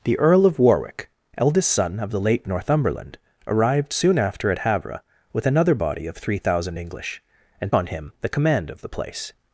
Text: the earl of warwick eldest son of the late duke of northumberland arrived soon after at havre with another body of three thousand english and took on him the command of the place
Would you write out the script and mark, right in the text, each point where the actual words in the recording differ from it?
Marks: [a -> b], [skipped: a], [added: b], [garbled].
the earl of warwick eldest son of the late [skipped: duke of] northumberland arrived soon after at havre with another body of three thousand english and [skipped: took] on him the command of the place